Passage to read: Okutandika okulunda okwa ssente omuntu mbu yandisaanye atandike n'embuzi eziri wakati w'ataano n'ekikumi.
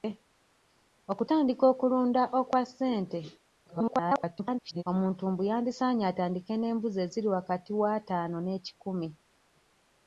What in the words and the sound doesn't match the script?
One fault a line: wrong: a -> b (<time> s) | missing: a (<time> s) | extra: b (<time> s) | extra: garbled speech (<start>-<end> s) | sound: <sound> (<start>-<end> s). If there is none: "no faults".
extra: garbled speech (3.7-4.8 s)